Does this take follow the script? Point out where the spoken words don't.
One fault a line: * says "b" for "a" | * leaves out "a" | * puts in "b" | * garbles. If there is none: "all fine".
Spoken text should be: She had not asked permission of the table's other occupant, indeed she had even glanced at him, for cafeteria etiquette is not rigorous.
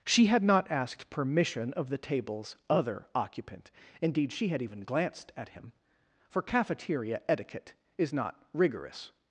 all fine